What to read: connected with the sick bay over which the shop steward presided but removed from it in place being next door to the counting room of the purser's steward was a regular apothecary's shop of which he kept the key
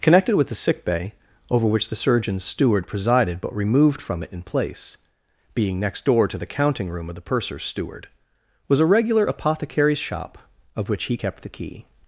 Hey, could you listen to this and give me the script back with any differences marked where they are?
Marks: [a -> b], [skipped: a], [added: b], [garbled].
connected with the sick bay over which the [shop -> surgeon's] steward presided but removed from it in place being next door to the counting room of the purser's steward was a regular apothecary's shop of which he kept the key